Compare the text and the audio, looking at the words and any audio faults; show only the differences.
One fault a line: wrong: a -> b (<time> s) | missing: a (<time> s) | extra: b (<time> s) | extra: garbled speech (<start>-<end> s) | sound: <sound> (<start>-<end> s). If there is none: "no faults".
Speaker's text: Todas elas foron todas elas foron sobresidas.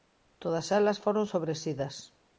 missing: todas elas foron (1.3 s)